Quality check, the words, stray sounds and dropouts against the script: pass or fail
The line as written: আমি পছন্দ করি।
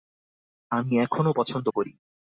fail